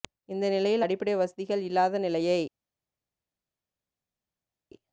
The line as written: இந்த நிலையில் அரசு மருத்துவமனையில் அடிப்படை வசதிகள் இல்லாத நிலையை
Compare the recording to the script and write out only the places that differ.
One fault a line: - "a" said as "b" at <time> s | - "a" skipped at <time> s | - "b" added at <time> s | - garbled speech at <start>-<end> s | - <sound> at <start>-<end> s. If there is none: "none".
- "அரசு மருத்துவமனையில்" skipped at 0.8 s